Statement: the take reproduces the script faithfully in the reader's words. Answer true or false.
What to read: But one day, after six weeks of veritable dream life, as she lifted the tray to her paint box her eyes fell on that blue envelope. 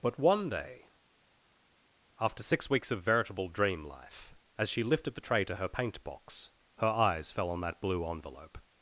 true